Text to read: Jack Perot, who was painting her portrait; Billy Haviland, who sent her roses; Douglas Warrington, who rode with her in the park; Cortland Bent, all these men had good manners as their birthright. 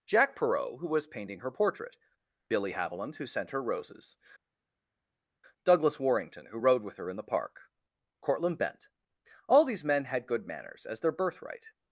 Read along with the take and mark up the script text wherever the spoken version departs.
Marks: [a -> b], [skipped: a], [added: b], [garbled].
Jack Perot, who was painting her portrait; Billy Haviland, who sent her roses; Douglas Warrington, who rode with her in the park; Cortland Bent, all these men had good manners as their birthright.